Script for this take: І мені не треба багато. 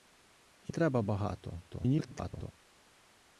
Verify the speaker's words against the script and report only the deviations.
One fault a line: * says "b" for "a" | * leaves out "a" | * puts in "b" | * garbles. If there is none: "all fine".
* leaves out "мені не"
* garbles